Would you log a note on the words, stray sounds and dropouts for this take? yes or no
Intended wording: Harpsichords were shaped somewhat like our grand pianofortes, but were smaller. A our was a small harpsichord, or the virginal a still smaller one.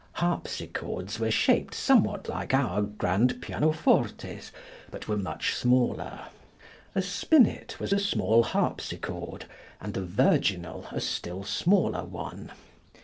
yes